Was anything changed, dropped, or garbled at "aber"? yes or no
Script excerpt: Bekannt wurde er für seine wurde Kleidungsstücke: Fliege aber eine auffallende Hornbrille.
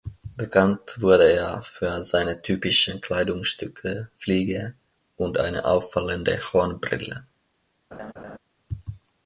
yes